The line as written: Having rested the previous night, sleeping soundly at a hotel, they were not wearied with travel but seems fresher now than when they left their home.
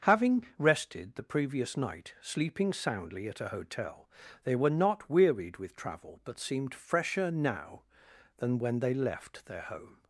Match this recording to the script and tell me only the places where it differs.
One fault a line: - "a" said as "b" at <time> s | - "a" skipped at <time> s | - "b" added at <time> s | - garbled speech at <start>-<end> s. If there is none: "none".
- "seems" said as "seemed" at 6.4 s